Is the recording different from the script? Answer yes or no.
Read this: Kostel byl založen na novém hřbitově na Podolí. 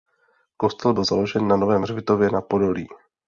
no